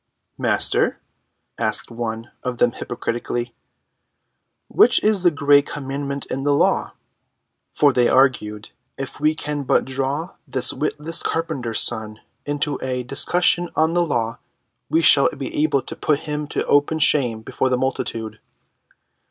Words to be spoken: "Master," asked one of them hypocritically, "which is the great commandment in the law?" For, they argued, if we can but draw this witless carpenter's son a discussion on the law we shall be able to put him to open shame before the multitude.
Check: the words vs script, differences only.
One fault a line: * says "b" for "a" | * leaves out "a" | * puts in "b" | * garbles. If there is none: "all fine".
* puts in "into"